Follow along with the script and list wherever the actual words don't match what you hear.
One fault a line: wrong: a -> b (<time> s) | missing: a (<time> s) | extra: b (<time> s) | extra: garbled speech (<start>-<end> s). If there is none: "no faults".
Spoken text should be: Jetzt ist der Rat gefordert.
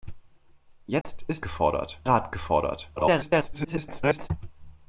wrong: der -> gefordert (1.4 s)
extra: garbled speech (3.0-4.3 s)